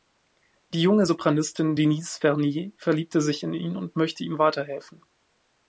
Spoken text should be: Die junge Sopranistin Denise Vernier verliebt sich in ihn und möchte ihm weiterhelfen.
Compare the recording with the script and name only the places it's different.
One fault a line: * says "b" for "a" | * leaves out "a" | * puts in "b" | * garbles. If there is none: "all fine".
all fine